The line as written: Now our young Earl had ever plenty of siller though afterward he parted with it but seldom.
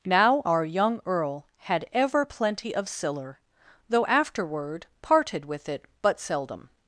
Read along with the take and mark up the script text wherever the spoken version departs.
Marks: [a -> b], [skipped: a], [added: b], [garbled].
Now our young Earl had ever plenty of siller though afterward [skipped: he] parted with it but seldom.